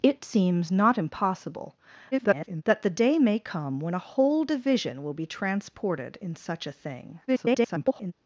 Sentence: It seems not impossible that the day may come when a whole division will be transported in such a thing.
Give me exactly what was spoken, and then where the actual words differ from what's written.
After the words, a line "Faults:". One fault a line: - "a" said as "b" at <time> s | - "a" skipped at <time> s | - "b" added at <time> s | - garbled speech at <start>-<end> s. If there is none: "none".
It seems not impossible [garbled] that the day may come when a whole division will be transported in such a thing. [garbled]
Faults:
- garbled speech at 2.1-2.6 s
- garbled speech at 7.3-8.1 s